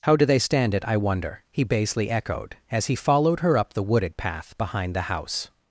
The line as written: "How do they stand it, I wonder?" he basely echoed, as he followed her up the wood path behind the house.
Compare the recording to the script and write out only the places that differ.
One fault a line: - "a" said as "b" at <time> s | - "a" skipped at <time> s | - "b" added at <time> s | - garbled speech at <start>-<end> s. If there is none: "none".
- "wood" said as "wooded" at 3.8 s